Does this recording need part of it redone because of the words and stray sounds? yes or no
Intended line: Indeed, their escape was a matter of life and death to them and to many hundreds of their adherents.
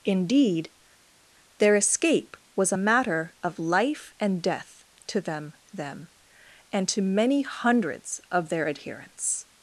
yes